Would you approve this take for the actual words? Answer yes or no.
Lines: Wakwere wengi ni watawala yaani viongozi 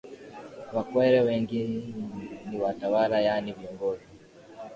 yes